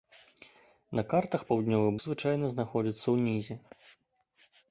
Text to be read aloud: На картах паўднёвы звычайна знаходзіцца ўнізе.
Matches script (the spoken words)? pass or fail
pass